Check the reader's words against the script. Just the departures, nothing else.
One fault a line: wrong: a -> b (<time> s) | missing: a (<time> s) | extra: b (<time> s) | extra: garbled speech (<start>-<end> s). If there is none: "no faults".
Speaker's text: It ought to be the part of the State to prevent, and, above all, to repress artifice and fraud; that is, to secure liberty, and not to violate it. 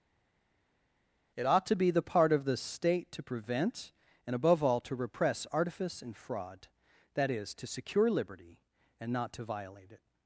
no faults